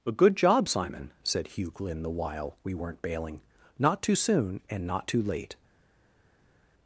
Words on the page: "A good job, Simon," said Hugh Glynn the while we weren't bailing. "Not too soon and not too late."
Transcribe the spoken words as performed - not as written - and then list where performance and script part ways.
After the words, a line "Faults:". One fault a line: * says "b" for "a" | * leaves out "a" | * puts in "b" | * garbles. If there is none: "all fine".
"A good job, Simon," said Hugh Glynn the while we weren't bailing. "Not too soon and not too late."
Faults:
all fine